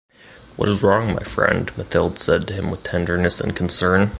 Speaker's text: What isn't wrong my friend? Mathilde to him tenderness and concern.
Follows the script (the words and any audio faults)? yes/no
no